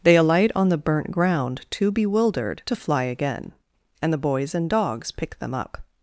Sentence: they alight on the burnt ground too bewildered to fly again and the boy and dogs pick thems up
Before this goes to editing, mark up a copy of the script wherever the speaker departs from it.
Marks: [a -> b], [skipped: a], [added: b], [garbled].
they alight on the burnt ground too bewildered to fly again and the [boy -> boys] and dogs pick [thems -> them] up